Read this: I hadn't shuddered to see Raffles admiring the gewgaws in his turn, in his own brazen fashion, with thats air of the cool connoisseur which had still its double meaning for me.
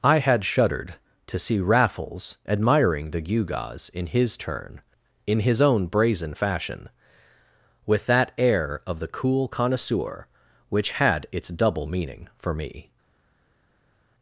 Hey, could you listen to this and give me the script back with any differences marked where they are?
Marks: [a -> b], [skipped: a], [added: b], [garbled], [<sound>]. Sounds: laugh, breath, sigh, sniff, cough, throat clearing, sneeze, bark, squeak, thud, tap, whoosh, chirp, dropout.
I [hadn't -> had] shuddered to see Raffles admiring the gewgaws in his turn, in his own brazen fashion, with [thats -> that] air of the cool connoisseur which had [skipped: still] its double meaning for me.